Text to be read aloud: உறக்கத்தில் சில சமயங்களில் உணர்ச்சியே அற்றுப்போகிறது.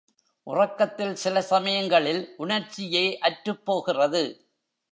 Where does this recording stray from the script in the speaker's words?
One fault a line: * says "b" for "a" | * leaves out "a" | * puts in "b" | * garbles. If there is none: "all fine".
all fine